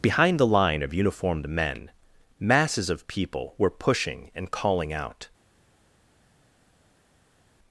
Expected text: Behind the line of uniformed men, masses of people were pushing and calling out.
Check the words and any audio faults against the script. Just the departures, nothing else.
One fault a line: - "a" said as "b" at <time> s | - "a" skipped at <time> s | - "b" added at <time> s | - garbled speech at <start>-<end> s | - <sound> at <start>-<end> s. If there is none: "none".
none